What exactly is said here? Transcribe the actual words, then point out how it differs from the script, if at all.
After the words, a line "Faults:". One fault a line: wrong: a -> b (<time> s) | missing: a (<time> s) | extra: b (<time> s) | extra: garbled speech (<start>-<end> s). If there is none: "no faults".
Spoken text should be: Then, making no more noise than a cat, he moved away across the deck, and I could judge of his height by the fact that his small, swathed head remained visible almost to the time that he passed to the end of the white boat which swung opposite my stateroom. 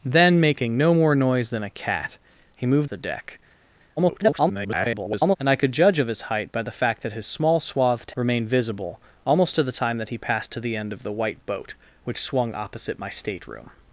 Then, making no more noise than a cat, he moved the deck, [garbled] and I could judge of his height by the fact that his small, swathed remained visible almost to the time that he passed to the end of the white boat which swung opposite my stateroom.
Faults:
missing: away across (2.9 s)
extra: garbled speech (4.0-5.4 s)
missing: head (8.1 s)